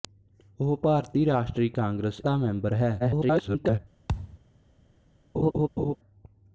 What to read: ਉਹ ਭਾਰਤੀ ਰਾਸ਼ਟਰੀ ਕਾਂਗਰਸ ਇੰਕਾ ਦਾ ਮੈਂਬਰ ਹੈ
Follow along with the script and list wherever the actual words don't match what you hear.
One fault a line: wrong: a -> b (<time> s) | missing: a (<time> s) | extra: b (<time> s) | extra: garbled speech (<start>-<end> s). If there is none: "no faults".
missing: ਇੰਕਾ (2.2 s)
extra: garbled speech (3.0-3.8 s)